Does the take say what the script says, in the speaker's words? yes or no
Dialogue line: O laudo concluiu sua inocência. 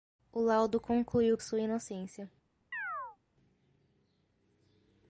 yes